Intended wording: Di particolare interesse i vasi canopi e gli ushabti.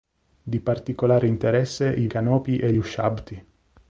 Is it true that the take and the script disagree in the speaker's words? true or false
true